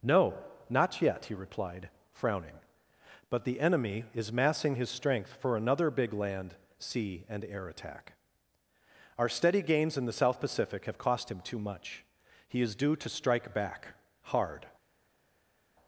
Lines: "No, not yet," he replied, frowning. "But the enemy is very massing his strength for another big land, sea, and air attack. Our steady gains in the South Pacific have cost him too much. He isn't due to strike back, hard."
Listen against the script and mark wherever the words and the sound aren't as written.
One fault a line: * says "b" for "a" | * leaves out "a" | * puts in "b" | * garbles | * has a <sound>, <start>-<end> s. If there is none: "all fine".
* leaves out "very"
* says "is" for "isn't"